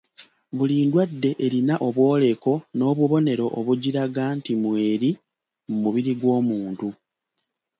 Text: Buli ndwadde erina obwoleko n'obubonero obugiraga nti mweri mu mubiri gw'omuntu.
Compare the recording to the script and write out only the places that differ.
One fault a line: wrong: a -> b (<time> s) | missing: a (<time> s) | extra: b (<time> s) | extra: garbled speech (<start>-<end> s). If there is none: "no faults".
no faults